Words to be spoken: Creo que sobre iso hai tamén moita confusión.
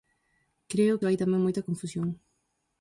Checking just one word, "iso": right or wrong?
wrong